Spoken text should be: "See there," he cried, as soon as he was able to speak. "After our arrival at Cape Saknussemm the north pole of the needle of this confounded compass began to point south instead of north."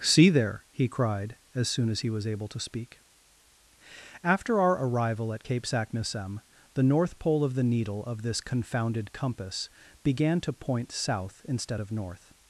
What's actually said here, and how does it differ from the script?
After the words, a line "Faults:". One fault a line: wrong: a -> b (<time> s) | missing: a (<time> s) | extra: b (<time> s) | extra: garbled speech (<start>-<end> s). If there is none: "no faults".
"See there," he cried, as soon as he was able to speak. "After our arrival at Cape Saknussemm the north pole of the needle of this confounded compass began to point south instead of north."
Faults:
no faults